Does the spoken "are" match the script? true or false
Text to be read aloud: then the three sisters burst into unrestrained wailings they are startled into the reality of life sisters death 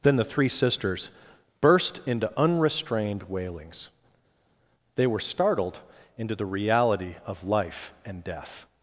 false